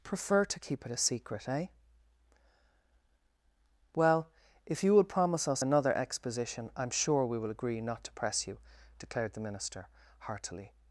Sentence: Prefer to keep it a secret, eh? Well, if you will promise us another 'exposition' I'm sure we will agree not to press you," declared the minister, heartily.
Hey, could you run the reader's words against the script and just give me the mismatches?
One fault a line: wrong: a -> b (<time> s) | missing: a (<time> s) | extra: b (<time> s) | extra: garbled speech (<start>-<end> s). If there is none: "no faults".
no faults